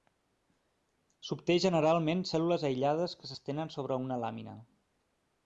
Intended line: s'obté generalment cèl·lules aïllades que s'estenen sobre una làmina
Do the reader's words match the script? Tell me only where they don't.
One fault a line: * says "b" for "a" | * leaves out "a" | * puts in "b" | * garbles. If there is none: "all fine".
all fine